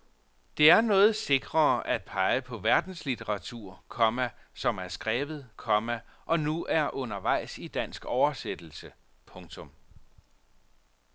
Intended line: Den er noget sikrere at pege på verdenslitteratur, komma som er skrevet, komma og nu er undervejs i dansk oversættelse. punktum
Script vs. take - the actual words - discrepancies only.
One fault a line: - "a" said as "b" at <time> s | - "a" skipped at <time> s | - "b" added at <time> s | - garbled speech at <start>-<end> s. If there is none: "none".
- "Den" said as "Det" at 0.6 s